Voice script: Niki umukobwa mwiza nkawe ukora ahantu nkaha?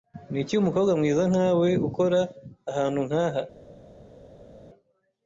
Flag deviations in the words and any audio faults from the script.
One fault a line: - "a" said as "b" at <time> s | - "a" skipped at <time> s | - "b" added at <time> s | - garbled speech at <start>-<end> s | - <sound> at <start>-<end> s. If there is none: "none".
none